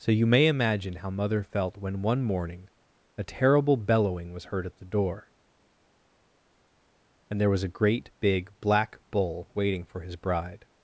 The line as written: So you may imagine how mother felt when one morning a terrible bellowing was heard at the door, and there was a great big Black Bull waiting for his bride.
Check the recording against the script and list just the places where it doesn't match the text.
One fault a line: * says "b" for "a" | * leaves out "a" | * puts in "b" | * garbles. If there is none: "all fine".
all fine